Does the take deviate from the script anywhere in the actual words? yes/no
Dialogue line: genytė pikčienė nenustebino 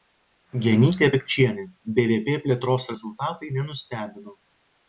yes